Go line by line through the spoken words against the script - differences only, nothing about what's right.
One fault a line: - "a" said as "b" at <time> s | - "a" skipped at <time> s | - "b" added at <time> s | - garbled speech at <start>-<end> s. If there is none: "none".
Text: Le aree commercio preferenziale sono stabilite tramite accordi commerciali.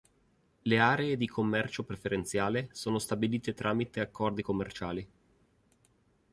- "di" added at 1.1 s